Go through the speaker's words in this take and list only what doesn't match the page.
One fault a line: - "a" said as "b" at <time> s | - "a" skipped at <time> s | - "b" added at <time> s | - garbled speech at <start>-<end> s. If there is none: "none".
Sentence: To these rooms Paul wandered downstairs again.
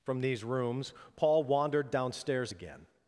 - "To" said as "From" at 0.0 s